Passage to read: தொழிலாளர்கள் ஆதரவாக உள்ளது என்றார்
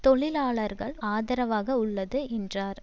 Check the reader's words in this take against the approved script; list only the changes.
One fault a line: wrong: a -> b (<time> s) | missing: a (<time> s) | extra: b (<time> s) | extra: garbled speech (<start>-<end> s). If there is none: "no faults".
no faults